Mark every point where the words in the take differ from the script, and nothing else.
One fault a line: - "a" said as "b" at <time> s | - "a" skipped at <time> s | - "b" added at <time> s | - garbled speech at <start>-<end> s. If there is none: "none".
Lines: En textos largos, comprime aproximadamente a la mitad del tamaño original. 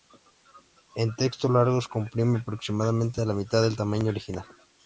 none